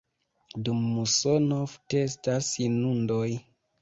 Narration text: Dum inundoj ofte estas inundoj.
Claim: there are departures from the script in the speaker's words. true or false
true